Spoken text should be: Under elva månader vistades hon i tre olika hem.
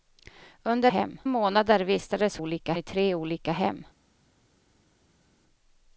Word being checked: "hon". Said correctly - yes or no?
no